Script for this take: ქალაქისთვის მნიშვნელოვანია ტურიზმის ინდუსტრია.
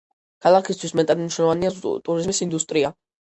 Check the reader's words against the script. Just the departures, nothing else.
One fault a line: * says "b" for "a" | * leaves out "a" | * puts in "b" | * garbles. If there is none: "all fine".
* puts in "მეტად"